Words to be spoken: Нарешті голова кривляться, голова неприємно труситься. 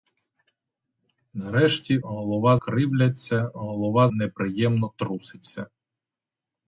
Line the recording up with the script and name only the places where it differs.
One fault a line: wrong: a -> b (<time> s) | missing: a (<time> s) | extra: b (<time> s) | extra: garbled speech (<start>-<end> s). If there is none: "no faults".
no faults